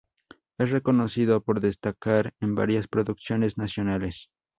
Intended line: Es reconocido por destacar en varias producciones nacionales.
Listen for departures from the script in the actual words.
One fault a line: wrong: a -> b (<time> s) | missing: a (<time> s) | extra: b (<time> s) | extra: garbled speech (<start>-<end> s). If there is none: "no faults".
no faults